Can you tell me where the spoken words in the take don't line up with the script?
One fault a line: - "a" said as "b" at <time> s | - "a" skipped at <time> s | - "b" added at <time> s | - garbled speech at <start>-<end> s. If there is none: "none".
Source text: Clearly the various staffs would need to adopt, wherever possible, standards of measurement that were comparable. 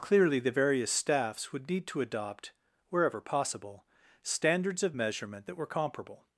none